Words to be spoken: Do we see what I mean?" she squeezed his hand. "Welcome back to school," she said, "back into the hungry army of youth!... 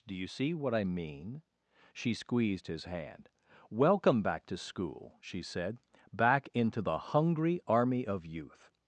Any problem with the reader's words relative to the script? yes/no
yes